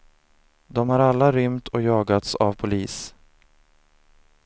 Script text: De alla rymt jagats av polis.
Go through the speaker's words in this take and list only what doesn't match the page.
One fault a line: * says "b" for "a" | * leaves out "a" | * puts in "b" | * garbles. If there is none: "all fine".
* puts in "har"
* puts in "och"